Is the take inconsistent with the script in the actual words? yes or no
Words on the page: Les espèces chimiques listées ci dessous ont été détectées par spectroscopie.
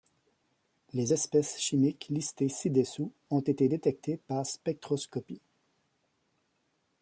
no